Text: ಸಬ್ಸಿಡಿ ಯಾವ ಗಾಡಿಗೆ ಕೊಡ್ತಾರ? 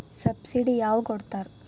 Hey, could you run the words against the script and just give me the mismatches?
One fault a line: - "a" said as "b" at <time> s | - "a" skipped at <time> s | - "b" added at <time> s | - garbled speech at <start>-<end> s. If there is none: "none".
- "ಗಾಡಿಗೆ" skipped at 1.0 s